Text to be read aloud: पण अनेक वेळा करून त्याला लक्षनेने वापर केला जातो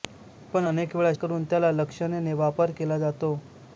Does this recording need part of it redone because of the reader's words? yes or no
no